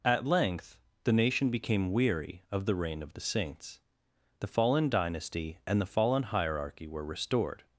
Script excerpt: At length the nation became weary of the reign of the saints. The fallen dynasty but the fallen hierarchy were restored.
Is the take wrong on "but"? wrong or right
wrong